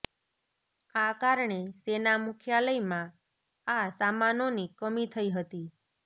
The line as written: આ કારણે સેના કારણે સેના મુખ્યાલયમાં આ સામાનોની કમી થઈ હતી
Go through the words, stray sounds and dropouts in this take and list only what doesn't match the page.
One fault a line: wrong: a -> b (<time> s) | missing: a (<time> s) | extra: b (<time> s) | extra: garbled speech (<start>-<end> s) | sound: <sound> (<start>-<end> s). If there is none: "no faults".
missing: કારણે સેના (2.1 s)